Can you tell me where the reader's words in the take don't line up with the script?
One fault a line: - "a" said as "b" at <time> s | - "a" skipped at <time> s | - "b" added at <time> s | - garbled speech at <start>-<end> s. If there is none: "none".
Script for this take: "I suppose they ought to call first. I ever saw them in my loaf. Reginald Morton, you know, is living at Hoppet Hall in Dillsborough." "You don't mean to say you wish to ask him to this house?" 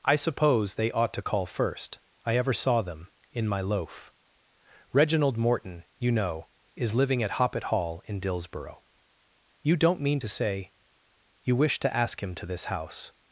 none